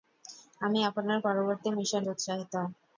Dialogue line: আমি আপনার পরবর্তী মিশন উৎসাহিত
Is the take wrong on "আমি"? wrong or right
right